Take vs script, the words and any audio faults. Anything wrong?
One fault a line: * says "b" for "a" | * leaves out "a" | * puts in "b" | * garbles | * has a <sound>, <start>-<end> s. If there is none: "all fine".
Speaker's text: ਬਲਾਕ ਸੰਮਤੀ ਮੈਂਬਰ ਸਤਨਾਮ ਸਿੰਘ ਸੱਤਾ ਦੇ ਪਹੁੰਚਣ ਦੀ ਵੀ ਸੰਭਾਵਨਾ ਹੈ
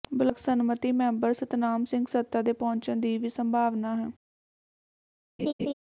* has a laugh, 5.4-5.7 s